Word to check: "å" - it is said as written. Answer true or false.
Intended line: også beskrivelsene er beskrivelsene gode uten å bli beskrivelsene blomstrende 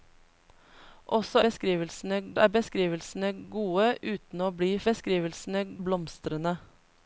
true